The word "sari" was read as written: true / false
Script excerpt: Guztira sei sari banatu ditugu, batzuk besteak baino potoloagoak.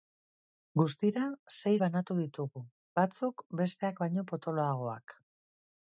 false